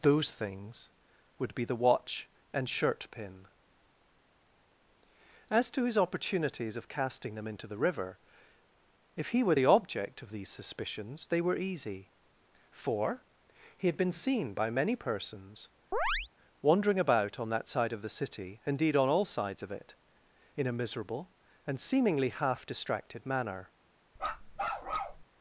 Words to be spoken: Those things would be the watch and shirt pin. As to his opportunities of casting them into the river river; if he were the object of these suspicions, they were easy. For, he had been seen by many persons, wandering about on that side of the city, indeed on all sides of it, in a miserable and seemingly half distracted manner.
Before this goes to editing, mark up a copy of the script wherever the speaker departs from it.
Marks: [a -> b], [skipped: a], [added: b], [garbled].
Those things would be the watch and shirt pin. As to his opportunities of casting them into the river [skipped: river;] if he were the object of these suspicions, they were easy. For, he had been seen by many persons, wandering about on that side of the city, indeed on all sides of it, in a miserable and seemingly half distracted manner.